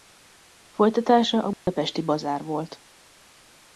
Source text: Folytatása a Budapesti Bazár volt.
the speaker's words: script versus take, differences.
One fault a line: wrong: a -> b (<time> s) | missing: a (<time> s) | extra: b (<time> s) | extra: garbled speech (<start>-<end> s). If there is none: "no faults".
no faults